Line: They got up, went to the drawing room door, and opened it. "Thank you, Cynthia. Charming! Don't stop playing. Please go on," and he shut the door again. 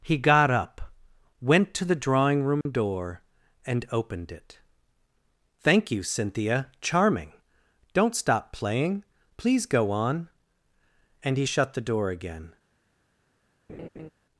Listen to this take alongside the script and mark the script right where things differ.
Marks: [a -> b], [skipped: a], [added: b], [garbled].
[They -> He] got up, went to the drawing room door, and opened it. "Thank you, Cynthia. Charming! Don't stop playing. Please go on," and he shut the door again.